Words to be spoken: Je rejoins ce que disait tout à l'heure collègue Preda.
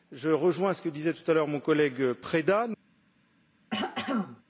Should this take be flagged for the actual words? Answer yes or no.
yes